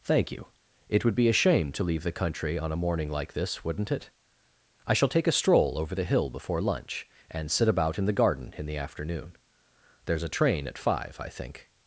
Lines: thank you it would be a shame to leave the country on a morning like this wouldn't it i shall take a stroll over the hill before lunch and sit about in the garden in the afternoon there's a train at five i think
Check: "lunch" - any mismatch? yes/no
no